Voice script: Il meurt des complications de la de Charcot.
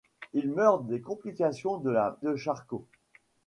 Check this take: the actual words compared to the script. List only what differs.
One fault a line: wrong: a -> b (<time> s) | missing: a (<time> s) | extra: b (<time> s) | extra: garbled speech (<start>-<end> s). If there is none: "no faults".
no faults